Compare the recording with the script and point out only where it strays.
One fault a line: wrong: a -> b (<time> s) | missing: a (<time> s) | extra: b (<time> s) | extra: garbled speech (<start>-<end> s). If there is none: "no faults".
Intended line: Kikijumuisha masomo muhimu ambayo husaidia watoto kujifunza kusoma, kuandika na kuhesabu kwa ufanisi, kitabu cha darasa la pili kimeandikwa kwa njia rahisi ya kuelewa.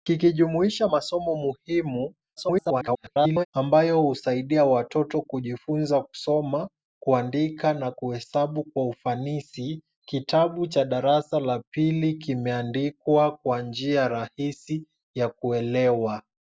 extra: garbled speech (2.4-3.5 s)